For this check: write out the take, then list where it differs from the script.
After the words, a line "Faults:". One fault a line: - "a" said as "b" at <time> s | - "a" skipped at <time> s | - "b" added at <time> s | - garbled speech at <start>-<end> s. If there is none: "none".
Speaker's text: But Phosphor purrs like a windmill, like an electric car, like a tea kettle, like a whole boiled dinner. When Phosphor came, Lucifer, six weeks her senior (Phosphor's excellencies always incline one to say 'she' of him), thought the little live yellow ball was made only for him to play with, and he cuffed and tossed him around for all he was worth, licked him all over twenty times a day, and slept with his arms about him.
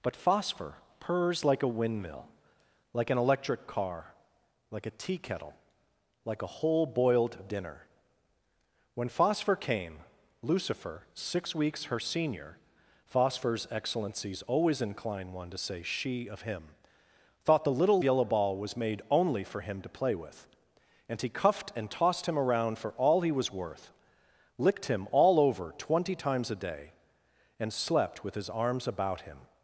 But Phosphor purrs like a windmill, like an electric car, like a tea kettle, like a whole boiled dinner. When Phosphor came, Lucifer, six weeks her senior (Phosphor's excellencies always incline one to say 'she' of him), thought the little yellow ball was made only for him to play with, and he cuffed and tossed him around for all he was worth, licked him all over twenty times a day, and slept with his arms about him.
Faults:
- "live" skipped at 18.0 s